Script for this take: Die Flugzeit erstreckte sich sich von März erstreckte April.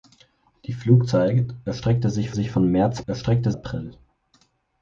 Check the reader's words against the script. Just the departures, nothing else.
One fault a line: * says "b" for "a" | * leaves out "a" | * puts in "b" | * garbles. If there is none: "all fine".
all fine